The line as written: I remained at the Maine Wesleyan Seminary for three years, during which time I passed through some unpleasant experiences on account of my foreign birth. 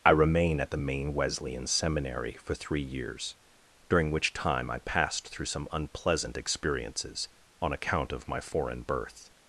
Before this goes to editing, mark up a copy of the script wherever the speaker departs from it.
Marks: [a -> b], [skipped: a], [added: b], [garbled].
I [remained -> remain] at the Maine Wesleyan Seminary for three years, during which time I passed through some unpleasant experiences on account of my foreign birth.